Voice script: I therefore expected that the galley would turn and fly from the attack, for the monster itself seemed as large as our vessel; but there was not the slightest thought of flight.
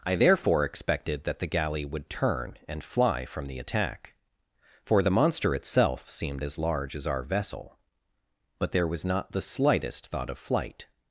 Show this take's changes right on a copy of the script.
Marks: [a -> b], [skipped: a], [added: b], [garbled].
I therefore expected that the galley would turn and fly from the attack, for the monster itself seemed as large as our vessel; but there was not the slightest thought of flight.